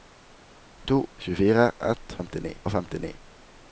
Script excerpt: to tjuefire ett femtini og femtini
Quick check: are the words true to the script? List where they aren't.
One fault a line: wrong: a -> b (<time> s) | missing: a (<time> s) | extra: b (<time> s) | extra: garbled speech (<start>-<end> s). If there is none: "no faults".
no faults